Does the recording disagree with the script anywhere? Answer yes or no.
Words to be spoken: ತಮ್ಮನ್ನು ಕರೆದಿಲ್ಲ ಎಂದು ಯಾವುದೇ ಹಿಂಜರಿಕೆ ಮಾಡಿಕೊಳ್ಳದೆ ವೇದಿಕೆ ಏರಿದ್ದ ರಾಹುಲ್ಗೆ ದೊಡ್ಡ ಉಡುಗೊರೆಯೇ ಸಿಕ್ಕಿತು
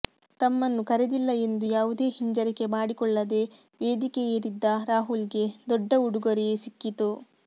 no